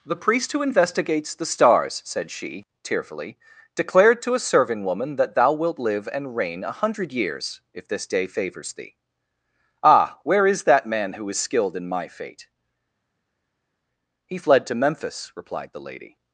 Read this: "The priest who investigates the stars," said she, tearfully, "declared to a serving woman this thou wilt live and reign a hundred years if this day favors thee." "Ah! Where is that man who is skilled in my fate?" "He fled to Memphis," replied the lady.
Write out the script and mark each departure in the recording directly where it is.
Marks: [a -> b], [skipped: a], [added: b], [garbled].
"The priest who investigates the stars," said she, tearfully, "declared to a serving woman [this -> that] thou wilt live and reign a hundred years if this day favors thee." "Ah! Where is that man who is skilled in my fate?" "He fled to Memphis," replied the lady.